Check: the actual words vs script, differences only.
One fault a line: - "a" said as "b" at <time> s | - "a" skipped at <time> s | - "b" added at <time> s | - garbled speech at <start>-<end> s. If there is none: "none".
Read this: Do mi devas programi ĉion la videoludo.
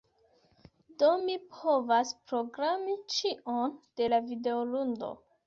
- "devas" said as "povas" at 1.5 s
- "de" added at 4.0 s